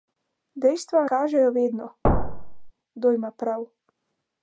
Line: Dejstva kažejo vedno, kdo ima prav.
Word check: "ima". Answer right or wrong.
right